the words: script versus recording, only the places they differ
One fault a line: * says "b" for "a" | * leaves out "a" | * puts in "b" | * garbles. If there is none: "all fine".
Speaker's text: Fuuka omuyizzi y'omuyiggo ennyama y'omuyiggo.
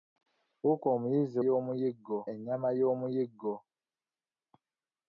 all fine